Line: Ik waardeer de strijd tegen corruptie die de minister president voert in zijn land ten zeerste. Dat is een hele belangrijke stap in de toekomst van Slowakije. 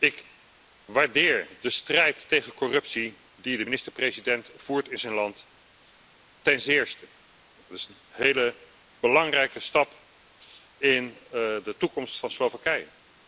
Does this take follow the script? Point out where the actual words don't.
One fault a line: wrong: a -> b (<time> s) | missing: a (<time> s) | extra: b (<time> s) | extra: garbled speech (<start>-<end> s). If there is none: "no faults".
no faults